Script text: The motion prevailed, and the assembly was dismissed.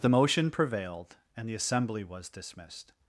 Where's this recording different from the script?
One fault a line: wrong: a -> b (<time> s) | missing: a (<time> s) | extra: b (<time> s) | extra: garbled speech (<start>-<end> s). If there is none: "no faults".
no faults